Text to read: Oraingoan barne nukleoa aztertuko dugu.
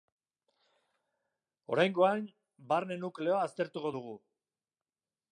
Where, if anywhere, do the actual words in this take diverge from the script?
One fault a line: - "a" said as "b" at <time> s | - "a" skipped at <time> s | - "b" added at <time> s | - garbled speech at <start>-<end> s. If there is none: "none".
none